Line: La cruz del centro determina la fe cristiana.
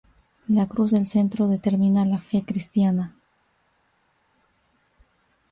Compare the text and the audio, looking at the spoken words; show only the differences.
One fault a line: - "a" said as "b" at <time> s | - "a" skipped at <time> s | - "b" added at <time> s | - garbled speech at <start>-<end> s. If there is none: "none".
none